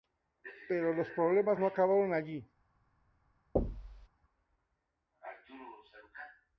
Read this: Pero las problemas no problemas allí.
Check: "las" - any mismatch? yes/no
yes